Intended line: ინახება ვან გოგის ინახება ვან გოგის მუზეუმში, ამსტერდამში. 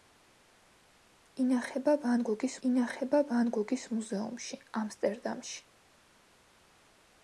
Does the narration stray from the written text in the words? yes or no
no